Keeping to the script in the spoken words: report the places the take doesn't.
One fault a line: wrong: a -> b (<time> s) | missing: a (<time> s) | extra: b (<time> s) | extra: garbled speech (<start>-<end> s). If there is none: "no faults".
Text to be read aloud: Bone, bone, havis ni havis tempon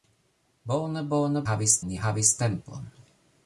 no faults